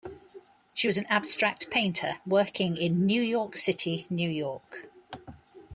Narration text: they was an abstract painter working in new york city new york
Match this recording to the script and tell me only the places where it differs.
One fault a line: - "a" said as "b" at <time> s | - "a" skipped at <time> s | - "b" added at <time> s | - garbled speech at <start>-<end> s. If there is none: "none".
- "they" said as "she" at 0.7 s